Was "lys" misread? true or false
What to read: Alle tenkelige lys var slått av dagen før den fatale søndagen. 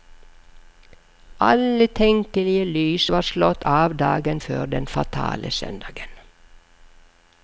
false